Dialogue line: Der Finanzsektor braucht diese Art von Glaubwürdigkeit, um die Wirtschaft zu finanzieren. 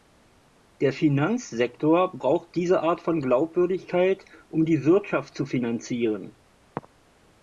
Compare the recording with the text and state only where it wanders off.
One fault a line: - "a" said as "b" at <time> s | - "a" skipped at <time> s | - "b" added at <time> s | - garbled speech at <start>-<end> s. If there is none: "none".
none